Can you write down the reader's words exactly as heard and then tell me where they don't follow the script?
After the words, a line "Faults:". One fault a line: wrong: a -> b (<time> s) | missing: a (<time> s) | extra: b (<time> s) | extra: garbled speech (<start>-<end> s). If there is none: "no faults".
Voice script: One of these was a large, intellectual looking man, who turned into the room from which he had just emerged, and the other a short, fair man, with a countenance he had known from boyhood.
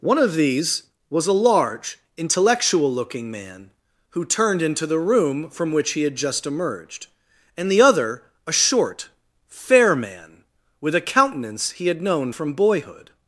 One of these was a large, intellectual looking man, who turned into the room from which he had just emerged, and the other a short, fair man, with a countenance he had known from boyhood.
Faults:
no faults